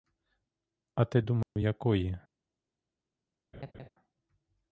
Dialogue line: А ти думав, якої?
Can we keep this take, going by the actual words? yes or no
yes